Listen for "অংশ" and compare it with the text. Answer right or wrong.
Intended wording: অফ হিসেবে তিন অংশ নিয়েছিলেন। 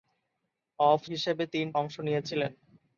right